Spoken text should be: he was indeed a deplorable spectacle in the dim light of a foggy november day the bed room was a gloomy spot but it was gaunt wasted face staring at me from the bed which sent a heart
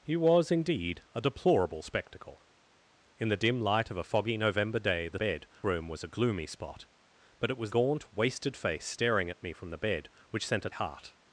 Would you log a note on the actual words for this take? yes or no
no